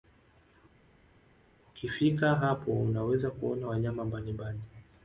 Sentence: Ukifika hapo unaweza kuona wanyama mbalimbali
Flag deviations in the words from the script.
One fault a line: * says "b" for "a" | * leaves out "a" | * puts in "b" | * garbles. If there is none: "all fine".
all fine